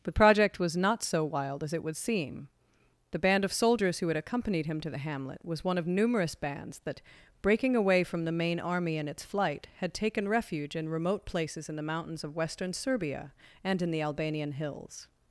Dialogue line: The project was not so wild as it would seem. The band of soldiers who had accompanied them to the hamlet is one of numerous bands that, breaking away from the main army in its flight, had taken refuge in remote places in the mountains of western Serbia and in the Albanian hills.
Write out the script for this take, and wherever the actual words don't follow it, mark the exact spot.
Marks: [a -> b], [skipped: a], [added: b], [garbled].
The project was not so wild as it would seem. The band of soldiers who had accompanied [them -> him] to the hamlet [is -> was] one of numerous bands that, breaking away from the main army in its flight, had taken refuge in remote places in the mountains of western Serbia and in the Albanian hills.